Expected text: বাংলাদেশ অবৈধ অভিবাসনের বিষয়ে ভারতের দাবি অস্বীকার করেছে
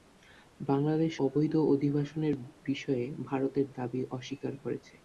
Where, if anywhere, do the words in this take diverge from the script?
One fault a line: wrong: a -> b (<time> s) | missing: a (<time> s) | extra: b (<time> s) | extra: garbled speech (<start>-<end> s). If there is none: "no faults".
no faults